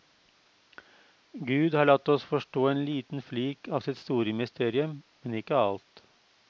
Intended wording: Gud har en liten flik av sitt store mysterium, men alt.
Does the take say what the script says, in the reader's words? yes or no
no